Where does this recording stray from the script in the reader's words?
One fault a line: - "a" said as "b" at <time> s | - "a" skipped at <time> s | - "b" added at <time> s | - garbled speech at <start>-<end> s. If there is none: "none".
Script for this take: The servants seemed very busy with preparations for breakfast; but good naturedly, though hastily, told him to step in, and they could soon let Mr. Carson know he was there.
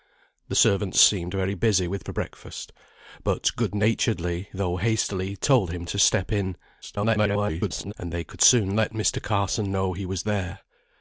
- "preparations" skipped at 2.1 s
- garbled speech at 6.8-7.9 s